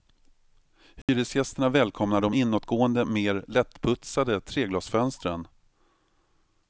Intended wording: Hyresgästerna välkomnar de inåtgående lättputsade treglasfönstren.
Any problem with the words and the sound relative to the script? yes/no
yes